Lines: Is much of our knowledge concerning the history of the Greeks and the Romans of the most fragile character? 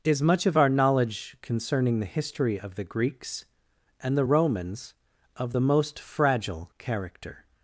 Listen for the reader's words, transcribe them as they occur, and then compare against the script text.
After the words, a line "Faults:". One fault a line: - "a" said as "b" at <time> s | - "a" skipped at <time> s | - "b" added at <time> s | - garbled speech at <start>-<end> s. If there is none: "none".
Is much of our knowledge concerning the history of the Greeks and the Romans of the most fragile character?
Faults:
none